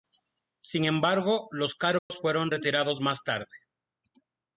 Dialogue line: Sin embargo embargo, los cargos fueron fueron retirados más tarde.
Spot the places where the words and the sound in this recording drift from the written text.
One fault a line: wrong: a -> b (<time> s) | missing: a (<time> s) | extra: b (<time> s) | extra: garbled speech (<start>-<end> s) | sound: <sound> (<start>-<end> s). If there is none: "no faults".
missing: embargo (1.5 s)
sound: dropout (2.0-2.1 s)
missing: fueron (2.5 s)